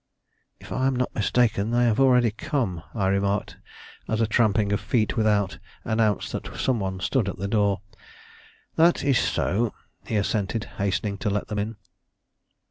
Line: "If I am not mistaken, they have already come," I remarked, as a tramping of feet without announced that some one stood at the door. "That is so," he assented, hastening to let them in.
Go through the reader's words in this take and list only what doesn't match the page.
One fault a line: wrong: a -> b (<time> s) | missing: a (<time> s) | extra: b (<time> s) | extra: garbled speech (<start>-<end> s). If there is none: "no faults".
no faults